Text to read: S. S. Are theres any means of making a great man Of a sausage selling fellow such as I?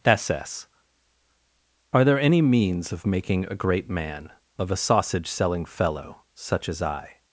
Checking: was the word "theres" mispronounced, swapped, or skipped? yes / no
yes